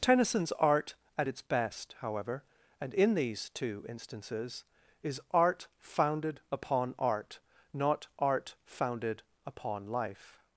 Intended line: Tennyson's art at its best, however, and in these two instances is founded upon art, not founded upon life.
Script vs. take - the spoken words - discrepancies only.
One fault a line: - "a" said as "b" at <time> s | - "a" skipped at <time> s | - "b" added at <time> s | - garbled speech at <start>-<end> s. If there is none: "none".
- "art" added at 5.3 s
- "art" added at 8.2 s